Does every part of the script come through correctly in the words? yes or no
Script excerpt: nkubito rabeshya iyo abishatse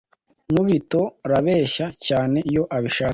no